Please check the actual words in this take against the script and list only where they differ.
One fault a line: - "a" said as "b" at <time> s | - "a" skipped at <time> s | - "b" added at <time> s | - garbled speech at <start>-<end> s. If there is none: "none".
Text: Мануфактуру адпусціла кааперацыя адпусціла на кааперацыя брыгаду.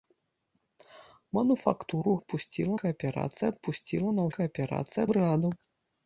none